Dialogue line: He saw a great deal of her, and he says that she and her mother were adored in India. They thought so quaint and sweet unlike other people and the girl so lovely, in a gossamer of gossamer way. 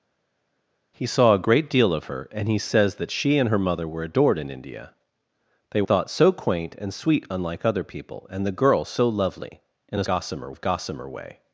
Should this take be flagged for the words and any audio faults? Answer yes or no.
no